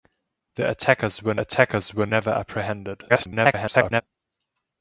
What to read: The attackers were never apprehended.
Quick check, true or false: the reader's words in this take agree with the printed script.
false